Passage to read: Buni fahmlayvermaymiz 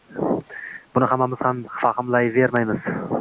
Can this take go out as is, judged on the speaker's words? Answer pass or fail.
fail